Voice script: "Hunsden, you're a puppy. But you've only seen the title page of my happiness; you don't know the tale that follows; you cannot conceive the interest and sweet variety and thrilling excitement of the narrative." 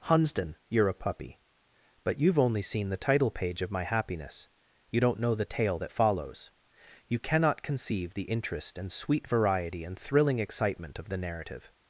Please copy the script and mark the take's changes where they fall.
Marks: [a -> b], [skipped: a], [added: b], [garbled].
"Hunsden, you're a puppy. But you've only seen the title page of my happiness; you don't know the tale that follows; you cannot conceive the interest and sweet variety and thrilling excitement of the narrative."